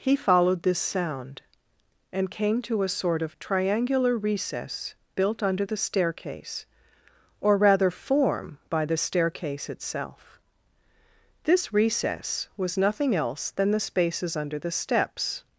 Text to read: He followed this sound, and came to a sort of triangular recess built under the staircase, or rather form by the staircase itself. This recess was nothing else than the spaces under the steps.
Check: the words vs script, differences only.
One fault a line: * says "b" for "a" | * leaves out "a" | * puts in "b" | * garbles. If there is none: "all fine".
all fine